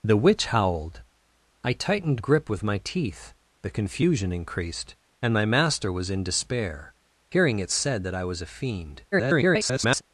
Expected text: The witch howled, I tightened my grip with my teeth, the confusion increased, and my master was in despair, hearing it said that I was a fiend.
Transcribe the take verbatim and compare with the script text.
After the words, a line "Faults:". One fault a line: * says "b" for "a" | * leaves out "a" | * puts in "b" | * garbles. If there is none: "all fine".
The witch howled, I tightened grip with my teeth, the confusion increased, and my master was in despair, hearing it said that I was a fiend. [garbled]
Faults:
* leaves out "my"
* garbles